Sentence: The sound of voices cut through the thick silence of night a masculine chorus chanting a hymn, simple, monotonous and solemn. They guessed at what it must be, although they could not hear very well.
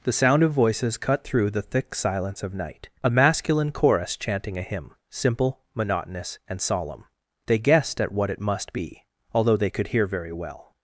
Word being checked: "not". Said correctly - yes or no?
no